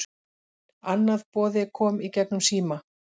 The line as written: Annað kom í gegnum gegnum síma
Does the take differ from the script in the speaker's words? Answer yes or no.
yes